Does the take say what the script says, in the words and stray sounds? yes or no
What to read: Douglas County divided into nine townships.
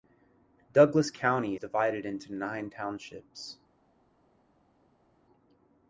yes